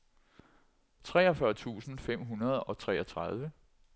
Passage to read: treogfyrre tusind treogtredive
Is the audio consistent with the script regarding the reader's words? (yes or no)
no